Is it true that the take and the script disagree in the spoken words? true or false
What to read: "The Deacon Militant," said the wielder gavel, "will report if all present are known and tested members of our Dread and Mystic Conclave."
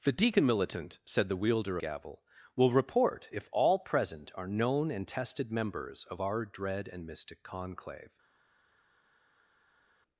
false